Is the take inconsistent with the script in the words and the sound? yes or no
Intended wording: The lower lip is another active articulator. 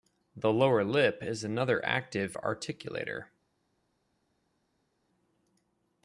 no